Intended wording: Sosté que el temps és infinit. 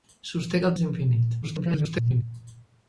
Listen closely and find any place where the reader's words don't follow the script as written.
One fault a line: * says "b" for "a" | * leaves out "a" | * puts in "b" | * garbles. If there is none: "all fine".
* leaves out "temps"
* garbles